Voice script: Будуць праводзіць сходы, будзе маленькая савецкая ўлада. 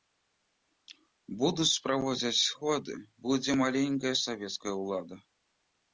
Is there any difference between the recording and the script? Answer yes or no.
no